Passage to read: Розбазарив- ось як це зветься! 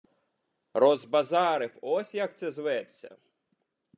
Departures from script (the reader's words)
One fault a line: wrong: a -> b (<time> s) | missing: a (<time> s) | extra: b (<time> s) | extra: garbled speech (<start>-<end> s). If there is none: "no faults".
no faults